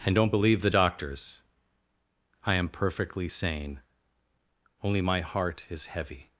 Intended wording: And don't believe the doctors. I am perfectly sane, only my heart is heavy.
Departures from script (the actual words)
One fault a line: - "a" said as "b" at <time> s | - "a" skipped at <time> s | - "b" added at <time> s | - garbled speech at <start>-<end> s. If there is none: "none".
none